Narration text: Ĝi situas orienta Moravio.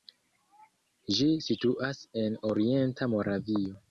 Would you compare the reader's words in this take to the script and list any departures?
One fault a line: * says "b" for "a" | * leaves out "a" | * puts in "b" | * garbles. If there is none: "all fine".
* puts in "en"